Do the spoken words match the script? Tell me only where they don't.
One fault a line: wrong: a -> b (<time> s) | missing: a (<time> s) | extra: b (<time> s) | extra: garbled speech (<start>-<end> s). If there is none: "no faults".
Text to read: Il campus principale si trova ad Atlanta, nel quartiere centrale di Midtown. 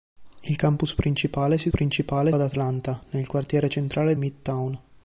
wrong: trova -> principale (1.7 s)
missing: di (4.1 s)